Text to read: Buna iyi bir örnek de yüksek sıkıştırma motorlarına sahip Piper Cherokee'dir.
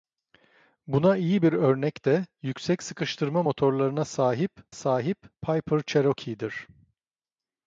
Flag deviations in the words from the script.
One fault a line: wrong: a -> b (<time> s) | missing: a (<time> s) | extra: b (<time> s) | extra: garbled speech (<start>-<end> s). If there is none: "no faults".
extra: sahip (4.7 s)